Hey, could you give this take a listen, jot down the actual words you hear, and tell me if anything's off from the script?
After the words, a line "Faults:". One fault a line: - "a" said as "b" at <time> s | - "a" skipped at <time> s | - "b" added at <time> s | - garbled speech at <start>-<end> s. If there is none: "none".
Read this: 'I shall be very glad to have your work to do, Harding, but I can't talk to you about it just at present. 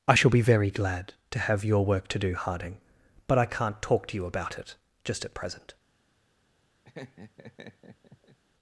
'I shall be very glad to have your work to do, Harding, but I can't talk to you about it just at present.
Faults:
none